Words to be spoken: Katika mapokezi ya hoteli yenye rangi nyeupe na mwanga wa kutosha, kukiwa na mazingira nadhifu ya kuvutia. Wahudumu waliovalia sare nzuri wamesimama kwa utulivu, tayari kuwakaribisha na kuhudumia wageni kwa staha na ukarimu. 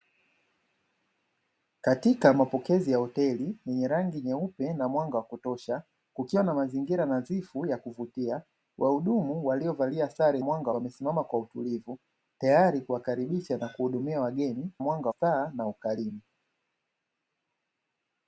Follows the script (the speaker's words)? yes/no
no